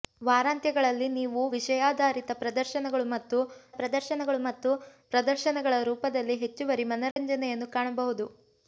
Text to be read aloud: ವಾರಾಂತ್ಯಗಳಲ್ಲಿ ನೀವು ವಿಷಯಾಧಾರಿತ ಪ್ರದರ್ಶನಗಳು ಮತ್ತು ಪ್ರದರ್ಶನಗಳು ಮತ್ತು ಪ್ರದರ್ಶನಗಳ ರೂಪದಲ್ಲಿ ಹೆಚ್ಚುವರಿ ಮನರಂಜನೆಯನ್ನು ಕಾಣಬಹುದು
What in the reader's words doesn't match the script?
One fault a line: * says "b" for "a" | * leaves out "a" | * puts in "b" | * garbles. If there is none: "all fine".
all fine